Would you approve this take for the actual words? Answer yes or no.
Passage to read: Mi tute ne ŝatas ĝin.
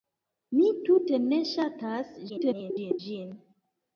no